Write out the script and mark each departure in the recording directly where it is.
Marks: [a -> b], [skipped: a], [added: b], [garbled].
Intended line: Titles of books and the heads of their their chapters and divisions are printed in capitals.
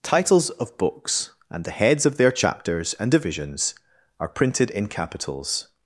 Titles of books and the heads of their [skipped: their] chapters and divisions are printed in capitals.